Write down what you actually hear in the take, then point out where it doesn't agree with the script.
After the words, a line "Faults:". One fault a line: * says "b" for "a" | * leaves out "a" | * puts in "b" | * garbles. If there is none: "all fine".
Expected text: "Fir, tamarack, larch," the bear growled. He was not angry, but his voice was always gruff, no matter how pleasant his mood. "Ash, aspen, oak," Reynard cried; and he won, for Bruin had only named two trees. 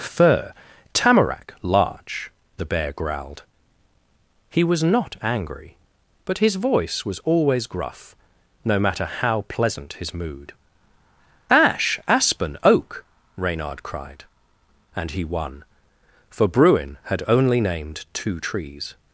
"Fir, tamarack, larch," the bear growled. He was not angry, but his voice was always gruff, no matter how pleasant his mood. "Ash, aspen, oak," Reynard cried; and he won, for Bruin had only named two trees.
Faults:
all fine